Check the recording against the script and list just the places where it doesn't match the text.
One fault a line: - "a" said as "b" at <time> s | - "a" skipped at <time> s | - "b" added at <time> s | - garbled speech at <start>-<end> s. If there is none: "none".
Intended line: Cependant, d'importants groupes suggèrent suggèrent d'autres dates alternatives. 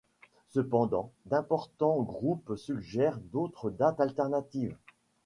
- "suggèrent" skipped at 3.2 s